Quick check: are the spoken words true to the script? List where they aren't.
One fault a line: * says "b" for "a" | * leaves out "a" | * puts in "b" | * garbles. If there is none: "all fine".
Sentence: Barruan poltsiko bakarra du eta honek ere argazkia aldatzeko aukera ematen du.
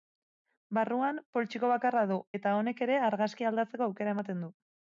all fine